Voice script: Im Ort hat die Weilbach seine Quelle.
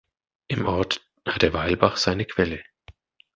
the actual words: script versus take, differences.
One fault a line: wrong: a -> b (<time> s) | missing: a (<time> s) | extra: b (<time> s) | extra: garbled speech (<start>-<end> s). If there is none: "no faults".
wrong: die -> der (1.4 s)